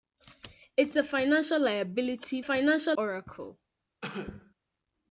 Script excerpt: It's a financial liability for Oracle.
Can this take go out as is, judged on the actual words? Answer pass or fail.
fail